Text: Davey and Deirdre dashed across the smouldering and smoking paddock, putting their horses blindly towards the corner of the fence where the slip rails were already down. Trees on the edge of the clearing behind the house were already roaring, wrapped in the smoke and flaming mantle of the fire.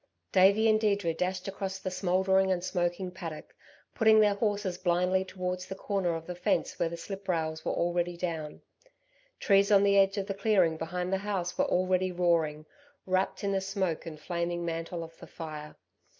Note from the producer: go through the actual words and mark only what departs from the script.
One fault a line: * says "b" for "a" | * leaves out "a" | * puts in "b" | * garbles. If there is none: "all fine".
all fine